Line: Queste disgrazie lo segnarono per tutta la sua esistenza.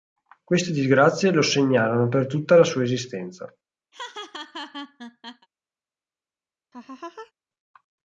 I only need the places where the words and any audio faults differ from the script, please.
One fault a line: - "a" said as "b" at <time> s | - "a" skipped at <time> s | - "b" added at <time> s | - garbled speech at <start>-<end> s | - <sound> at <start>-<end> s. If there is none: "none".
- laugh at 3.9-5.5 s
- laugh at 6.7-7.3 s